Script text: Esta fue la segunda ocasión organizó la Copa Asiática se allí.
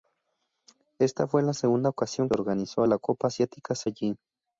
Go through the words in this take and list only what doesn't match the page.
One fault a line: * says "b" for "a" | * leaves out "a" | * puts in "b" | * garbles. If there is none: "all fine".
all fine